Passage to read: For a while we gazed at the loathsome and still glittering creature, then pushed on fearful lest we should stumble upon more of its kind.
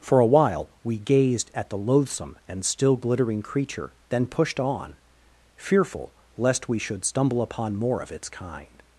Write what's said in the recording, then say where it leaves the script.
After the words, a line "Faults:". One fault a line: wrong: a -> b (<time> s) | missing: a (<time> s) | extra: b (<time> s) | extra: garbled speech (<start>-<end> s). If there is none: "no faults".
For a while we gazed at the loathsome and still glittering creature, then pushed on fearful lest we should stumble upon more of its kind.
Faults:
no faults